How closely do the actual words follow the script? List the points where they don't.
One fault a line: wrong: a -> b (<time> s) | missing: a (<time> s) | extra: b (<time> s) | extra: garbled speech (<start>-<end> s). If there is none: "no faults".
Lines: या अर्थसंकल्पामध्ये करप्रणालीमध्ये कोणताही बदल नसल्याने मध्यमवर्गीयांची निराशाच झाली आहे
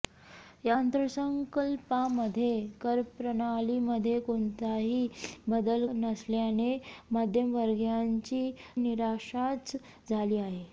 no faults